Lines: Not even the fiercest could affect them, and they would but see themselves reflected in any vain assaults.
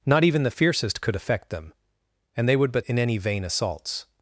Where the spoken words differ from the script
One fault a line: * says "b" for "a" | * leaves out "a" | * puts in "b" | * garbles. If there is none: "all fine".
* leaves out "see themselves reflected"